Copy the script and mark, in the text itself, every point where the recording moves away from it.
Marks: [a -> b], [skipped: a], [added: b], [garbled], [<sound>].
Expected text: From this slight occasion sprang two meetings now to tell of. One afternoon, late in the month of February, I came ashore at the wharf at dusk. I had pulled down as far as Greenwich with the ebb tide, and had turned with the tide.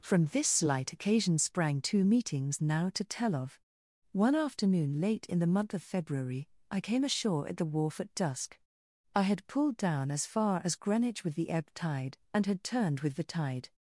From this slight occasion sprang two meetings now to tell of. One afternoon, late in the month of February, I came ashore at the wharf at dusk. I had pulled down as far as Greenwich with the ebb tide, and had turned with the tide.